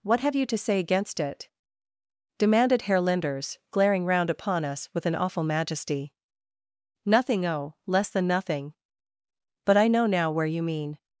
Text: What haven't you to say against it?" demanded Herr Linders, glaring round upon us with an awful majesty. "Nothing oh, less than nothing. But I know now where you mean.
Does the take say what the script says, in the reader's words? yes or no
no